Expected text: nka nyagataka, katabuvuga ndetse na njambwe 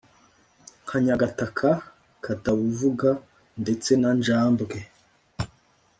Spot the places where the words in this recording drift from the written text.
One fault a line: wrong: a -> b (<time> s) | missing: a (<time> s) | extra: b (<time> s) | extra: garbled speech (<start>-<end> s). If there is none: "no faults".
no faults